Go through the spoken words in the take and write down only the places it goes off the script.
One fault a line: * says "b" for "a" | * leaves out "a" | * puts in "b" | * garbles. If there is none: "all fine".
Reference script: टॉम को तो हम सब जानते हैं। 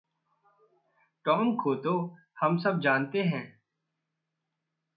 all fine